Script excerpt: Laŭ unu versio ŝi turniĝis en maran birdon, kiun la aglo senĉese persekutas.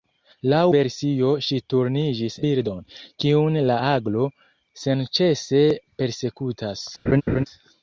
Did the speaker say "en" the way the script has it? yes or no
no